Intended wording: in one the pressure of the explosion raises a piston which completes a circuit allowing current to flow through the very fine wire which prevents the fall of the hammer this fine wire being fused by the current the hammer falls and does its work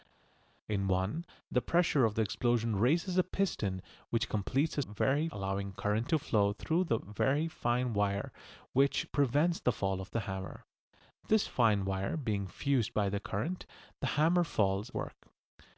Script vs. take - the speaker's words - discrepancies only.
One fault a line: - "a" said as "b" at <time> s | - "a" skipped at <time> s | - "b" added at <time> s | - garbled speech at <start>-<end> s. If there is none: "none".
- "circuit" said as "very" at 4.8 s
- "and does its" skipped at 14.9 s